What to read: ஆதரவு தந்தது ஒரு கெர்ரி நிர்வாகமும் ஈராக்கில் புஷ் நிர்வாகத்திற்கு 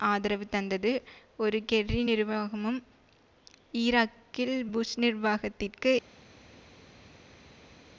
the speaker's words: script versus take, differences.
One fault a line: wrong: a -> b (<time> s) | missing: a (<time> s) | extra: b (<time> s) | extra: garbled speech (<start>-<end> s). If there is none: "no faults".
no faults